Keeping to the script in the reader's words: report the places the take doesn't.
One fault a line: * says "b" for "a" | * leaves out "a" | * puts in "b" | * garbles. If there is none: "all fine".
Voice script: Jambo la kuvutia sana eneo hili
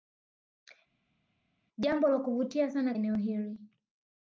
all fine